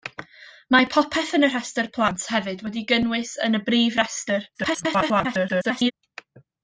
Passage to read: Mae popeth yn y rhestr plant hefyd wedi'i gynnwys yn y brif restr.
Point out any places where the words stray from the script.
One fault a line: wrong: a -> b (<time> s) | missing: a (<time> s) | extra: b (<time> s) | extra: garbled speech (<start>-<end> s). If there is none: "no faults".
extra: garbled speech (4.5-5.9 s)